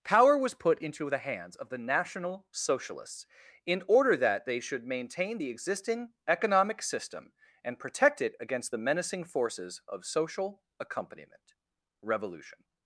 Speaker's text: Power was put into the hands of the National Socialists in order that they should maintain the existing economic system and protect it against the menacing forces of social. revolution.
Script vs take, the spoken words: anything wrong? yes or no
yes